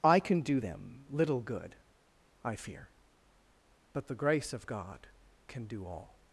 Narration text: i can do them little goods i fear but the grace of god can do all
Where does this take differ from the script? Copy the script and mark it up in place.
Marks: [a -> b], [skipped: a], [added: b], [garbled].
i can do them little [goods -> good] i fear but the grace of god can do all